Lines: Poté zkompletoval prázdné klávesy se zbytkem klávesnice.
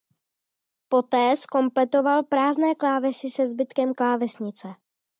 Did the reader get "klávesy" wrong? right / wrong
right